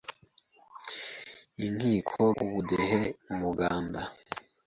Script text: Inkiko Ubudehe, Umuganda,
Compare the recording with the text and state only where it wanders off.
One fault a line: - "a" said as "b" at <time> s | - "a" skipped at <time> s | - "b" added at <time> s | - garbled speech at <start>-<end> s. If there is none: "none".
none